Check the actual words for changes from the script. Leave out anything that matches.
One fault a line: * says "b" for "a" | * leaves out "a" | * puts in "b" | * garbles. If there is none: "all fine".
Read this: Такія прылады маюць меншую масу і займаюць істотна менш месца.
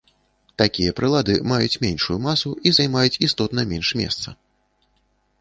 all fine